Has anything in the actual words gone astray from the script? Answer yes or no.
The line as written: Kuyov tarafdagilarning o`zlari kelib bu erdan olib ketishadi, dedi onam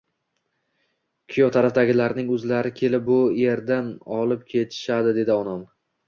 no